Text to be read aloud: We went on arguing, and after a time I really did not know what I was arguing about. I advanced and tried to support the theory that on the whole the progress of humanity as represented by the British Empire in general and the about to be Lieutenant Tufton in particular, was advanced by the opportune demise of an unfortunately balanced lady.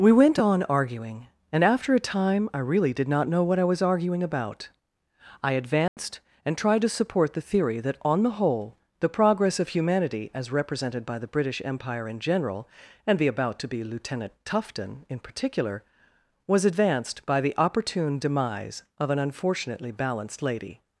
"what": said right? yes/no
yes